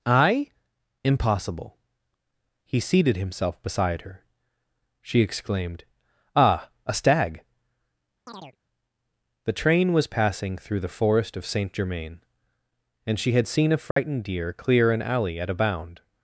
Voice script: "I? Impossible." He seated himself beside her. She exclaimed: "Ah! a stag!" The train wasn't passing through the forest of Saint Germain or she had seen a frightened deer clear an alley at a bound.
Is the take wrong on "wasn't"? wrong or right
wrong